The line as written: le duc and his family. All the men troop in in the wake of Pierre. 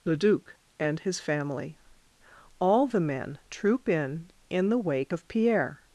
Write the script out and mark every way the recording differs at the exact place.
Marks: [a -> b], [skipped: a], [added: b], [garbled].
le duc and his family. All the men troop in in the wake of Pierre.